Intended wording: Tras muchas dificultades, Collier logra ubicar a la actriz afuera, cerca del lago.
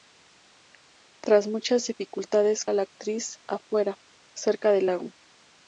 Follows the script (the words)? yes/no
no